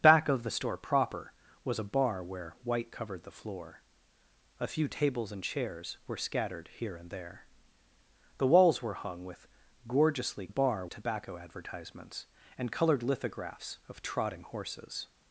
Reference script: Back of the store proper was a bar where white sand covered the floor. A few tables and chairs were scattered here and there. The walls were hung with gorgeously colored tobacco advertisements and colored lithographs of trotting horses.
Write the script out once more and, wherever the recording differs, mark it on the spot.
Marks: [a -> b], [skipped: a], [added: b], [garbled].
Back of the store proper was a bar where white [skipped: sand] covered the floor. A few tables and chairs were scattered here and there. The walls were hung with gorgeously [colored -> bar] tobacco advertisements and colored lithographs of trotting horses.